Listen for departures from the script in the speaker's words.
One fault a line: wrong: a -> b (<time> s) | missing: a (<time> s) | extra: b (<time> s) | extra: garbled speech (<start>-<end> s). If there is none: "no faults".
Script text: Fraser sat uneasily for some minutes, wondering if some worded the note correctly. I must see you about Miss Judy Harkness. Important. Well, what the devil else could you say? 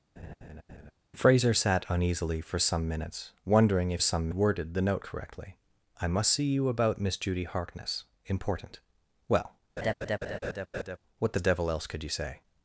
no faults